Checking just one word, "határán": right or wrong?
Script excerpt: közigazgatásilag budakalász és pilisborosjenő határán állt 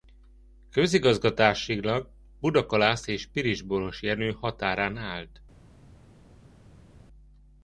right